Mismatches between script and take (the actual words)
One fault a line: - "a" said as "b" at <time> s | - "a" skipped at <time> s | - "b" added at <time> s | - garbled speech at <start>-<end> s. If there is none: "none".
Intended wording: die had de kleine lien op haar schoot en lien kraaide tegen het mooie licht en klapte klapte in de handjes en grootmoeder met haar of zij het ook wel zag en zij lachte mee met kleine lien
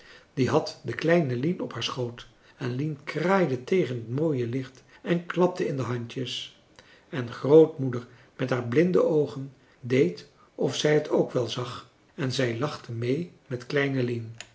- "klapte" skipped at 5.7 s
- "blinde oogen deed" added at 8.6 s